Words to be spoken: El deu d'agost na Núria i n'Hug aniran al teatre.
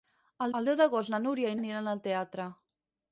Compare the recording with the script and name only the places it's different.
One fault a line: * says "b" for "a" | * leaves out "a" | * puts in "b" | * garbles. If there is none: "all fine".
* puts in "el"
* leaves out "n'Hug"